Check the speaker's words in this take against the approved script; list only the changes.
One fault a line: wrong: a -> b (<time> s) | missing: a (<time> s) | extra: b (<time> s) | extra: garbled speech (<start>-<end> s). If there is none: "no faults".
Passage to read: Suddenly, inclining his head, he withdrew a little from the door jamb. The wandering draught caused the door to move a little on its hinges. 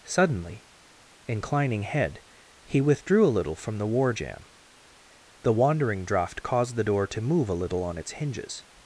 missing: his (1.8 s)
wrong: door -> war (3.9 s)